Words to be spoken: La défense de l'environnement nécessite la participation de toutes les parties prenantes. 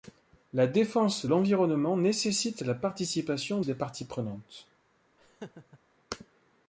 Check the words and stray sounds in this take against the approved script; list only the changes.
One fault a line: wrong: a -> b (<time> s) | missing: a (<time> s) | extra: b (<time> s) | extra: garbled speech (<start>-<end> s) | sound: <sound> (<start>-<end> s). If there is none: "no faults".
missing: de (1.3 s)
missing: de toutes (3.6 s)
sound: laugh (5.2-5.8 s)